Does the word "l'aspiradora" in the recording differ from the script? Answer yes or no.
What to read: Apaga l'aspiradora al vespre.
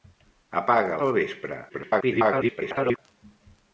yes